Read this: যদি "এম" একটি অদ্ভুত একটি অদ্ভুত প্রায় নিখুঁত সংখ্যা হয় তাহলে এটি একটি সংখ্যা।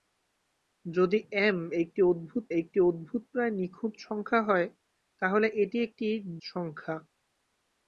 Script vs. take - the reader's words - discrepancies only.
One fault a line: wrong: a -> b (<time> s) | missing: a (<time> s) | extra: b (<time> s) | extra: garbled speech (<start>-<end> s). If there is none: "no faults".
no faults